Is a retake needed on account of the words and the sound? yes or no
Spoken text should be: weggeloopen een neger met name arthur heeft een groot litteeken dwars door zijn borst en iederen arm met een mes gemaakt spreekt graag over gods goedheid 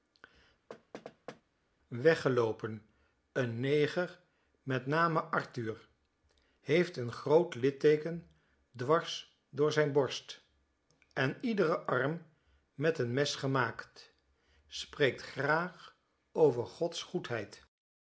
yes